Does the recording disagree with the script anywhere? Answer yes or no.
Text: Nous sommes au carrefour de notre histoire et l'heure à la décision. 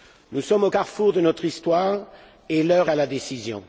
no